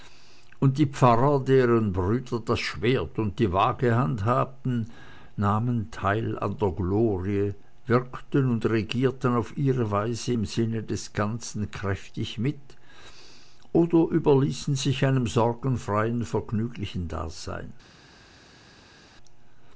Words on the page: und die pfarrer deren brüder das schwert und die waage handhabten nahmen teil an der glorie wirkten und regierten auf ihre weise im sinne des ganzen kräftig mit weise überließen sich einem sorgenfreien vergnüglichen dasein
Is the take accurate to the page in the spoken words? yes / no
no